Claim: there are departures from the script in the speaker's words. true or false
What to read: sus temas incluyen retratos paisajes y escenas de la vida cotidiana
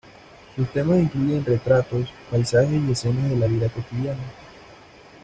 false